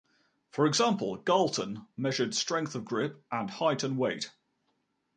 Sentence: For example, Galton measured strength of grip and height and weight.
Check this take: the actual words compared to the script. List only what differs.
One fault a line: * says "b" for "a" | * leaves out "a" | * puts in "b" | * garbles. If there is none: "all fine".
all fine